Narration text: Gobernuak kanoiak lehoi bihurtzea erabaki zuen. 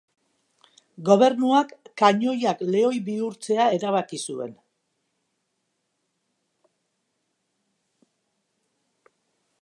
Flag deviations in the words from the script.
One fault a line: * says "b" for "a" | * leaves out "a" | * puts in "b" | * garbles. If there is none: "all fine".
all fine